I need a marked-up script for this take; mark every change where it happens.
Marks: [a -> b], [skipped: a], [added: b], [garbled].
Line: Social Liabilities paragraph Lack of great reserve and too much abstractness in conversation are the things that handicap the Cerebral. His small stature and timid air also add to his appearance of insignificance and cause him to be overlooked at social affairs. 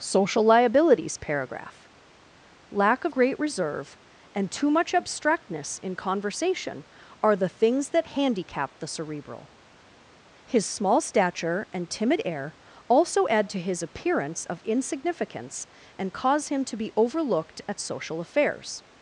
Social Liabilities paragraph Lack of great reserve and too much abstractness in conversation are the things that handicap the Cerebral. His small stature and timid air also add to his appearance of insignificance and cause him to be overlooked at social affairs.